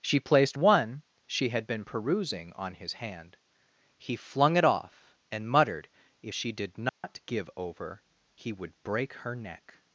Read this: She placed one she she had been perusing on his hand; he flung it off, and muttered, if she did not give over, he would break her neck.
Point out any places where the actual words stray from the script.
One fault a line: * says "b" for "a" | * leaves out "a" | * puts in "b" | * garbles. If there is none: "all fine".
* leaves out "she"